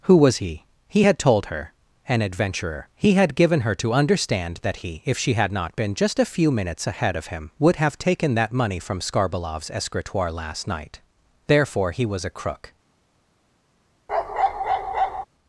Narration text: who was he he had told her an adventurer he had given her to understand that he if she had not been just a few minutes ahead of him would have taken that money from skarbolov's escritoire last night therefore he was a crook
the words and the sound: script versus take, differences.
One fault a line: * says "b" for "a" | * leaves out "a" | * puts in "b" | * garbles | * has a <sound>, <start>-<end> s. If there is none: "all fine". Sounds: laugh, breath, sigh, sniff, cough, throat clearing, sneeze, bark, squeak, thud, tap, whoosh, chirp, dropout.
* has a bark, 14.1-15.3 s